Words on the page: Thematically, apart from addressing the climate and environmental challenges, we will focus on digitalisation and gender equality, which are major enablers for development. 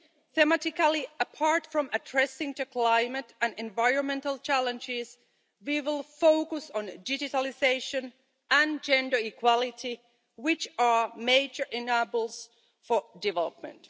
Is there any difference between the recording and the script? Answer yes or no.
no